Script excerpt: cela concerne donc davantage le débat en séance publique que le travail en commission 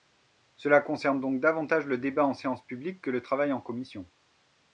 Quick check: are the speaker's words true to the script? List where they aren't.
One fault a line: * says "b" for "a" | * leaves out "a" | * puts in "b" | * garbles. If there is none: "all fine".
all fine